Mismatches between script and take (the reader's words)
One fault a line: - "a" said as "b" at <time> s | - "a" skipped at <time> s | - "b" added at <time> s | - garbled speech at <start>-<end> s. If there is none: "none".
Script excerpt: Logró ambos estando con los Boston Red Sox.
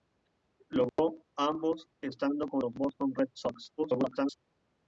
- garbled speech at 3.8-4.4 s